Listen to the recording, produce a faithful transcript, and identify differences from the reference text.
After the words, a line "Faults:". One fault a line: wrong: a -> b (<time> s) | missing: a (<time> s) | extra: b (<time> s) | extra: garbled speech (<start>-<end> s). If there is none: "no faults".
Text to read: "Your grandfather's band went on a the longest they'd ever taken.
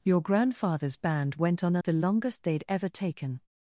"Your grandfather's band went on a the longest they'd ever taken.
Faults:
no faults